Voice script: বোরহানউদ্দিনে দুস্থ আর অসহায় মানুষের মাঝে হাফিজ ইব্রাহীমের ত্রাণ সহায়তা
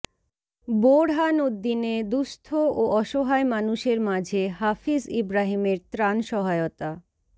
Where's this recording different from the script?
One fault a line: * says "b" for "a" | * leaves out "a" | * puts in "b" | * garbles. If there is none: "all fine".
* says "ও" for "আর"